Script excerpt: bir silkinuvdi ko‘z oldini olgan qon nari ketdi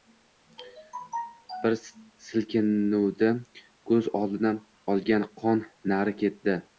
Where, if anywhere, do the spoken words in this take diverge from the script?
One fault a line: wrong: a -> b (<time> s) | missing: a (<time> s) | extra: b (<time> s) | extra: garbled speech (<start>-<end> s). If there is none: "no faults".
no faults